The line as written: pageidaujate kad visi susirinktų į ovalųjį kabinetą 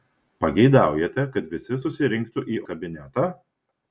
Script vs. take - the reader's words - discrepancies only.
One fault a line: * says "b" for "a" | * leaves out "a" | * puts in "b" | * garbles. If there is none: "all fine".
* leaves out "ovalųjį"